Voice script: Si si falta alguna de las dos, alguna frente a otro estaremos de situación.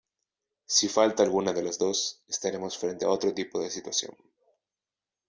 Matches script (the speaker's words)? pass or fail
fail